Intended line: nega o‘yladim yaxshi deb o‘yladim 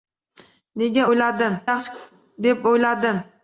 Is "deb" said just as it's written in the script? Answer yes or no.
yes